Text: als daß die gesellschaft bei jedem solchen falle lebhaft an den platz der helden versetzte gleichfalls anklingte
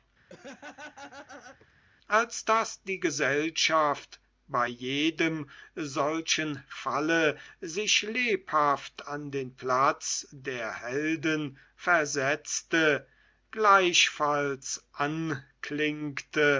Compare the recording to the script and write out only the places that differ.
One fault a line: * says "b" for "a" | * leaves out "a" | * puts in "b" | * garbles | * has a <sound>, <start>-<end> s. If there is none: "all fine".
* has a laugh, 0.3-1.7 s
* puts in "sich"